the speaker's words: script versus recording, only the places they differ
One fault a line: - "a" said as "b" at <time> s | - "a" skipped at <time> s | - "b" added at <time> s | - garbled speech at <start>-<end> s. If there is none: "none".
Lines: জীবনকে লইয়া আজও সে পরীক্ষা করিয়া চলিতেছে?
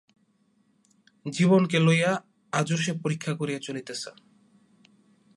none